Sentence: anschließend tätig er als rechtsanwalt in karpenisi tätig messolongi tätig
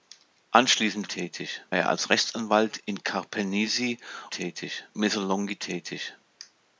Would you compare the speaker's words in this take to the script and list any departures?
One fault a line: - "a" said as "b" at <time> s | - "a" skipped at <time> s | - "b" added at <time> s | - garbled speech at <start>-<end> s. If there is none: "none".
none